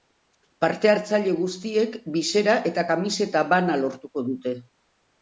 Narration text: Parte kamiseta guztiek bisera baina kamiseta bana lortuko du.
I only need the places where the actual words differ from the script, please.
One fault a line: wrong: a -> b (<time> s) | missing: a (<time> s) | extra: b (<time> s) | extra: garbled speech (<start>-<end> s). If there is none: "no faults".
wrong: kamiseta -> hartzaile (0.9 s)
wrong: baina -> eta (2.7 s)
wrong: du -> dute (4.3 s)